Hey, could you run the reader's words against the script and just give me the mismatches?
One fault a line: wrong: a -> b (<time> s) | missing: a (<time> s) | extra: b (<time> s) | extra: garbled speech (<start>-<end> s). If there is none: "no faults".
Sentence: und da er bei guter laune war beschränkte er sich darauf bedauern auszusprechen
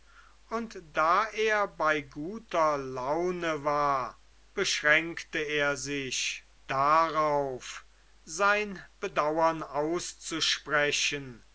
extra: sein (8.2 s)